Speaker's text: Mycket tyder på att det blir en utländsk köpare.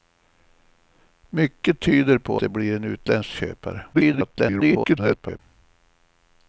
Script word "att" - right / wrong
wrong